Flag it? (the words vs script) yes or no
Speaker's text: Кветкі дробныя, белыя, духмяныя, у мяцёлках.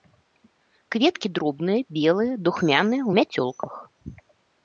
no